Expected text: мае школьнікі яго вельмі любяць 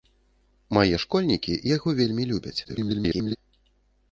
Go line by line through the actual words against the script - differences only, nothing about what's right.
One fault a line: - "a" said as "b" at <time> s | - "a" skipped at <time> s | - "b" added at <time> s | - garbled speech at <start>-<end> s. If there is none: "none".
- garbled speech at 2.6-3.4 s